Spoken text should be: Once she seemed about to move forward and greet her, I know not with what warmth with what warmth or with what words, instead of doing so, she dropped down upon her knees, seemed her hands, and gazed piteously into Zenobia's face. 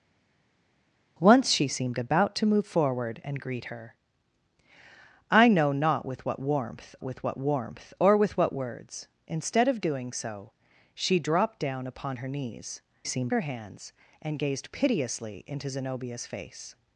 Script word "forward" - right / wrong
right